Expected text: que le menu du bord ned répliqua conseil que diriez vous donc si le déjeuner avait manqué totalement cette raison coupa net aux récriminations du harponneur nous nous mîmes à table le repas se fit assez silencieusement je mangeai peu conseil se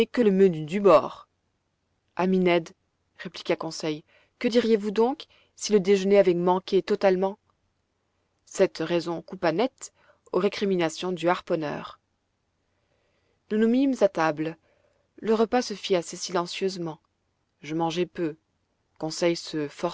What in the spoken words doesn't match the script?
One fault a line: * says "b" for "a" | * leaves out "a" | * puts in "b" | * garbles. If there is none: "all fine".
* puts in "ami"